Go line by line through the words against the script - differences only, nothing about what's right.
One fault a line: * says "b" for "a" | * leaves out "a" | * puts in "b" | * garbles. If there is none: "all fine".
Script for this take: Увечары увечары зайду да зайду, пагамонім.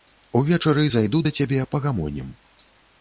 * leaves out "увечары"
* says "цябе" for "зайду"